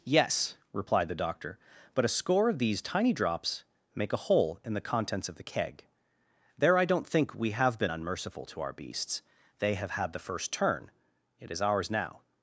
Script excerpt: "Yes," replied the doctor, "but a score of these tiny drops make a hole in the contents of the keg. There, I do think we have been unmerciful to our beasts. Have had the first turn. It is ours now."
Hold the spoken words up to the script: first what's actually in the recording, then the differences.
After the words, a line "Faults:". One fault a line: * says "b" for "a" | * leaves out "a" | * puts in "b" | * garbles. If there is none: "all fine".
"Yes," replied the doctor, "but a score of these tiny drops make a hole in the contents of the keg. There, I don't think we have been unmerciful to our beasts. They have had the first turn. It is ours now."
Faults:
* says "don't" for "do"
* puts in "They"